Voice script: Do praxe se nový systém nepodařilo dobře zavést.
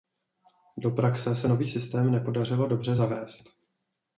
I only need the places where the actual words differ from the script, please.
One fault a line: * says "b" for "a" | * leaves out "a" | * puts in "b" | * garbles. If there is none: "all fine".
all fine